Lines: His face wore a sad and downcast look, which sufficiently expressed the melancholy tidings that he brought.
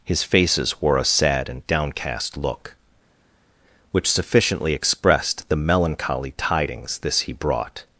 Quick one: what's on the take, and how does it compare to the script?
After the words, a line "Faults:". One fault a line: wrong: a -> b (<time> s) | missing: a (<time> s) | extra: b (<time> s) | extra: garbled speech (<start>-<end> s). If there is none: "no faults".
His faces wore a sad and downcast look, which sufficiently expressed the melancholy tidings this he brought.
Faults:
wrong: face -> faces (0.2 s)
wrong: that -> this (7.0 s)